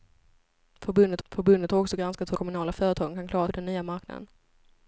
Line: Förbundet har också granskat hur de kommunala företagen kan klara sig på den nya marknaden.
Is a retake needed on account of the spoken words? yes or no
yes